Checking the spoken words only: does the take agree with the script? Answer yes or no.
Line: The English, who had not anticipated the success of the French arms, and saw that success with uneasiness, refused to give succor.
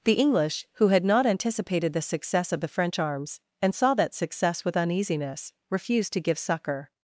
yes